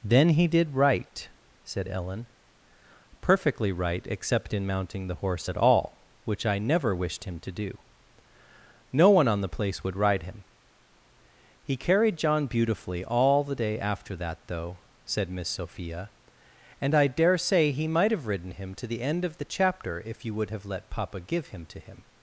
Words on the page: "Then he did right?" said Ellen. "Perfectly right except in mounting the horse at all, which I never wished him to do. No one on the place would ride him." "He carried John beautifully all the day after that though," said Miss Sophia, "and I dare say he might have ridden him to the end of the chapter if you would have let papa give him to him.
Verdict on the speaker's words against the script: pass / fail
pass